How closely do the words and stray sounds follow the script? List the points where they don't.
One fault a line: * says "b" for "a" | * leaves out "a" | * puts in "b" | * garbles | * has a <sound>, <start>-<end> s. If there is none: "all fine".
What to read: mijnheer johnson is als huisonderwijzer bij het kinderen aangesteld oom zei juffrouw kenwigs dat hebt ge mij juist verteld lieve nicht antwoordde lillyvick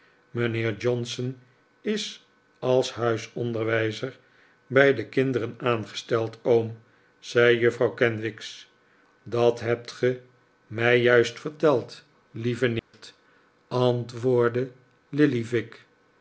* says "de" for "het"
* has a dropout, 12.8-12.9 s